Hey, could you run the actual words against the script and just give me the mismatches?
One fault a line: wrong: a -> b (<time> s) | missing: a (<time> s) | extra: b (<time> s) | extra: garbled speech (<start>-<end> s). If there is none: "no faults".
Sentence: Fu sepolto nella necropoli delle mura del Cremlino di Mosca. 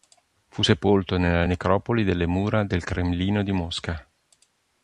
no faults